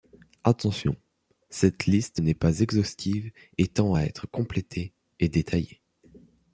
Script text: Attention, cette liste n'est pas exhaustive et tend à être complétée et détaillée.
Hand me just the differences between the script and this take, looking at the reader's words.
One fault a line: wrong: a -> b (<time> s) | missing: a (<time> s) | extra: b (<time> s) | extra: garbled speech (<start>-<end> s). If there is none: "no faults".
no faults